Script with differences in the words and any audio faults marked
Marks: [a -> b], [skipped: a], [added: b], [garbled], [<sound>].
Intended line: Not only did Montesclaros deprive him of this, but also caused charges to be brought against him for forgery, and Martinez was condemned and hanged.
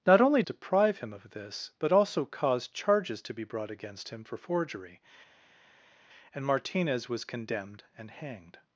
Not only [skipped: did Montesclaros] deprive him of this, but also caused charges to be brought against him for forgery, and Martinez was condemned and hanged.